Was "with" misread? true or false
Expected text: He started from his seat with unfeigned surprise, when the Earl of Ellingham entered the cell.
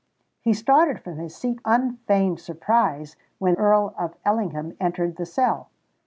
true